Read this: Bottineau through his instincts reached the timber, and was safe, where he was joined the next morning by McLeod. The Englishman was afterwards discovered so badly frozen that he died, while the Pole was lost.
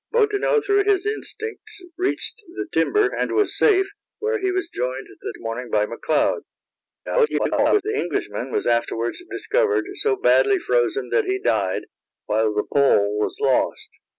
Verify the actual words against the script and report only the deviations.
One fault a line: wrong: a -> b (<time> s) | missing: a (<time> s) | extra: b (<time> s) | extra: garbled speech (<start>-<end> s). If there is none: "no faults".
missing: next (5.3 s)
extra: garbled speech (7.1-7.8 s)